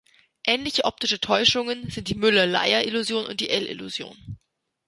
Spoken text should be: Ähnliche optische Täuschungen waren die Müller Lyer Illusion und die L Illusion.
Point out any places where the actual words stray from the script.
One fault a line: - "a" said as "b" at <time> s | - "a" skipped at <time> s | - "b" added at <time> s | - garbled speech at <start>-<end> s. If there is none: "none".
- "waren" said as "sind" at 1.9 s